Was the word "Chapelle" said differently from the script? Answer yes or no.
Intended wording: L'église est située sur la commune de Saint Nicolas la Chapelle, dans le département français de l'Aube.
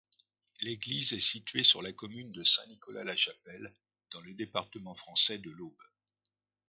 no